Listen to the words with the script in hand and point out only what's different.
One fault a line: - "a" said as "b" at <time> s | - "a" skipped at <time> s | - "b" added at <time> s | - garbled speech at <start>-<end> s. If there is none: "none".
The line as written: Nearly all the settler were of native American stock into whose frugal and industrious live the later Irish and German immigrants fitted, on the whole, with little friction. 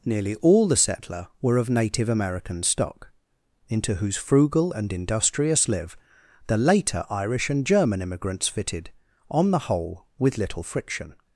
none